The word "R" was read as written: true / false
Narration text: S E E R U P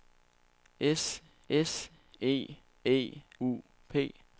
false